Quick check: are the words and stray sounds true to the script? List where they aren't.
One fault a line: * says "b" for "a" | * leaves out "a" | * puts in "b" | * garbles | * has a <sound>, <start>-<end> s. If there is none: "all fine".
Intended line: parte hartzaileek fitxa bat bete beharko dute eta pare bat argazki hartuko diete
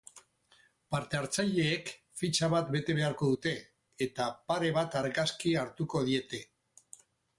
all fine